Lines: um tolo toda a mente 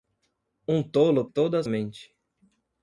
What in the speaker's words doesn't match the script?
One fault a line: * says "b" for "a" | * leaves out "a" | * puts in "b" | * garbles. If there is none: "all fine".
all fine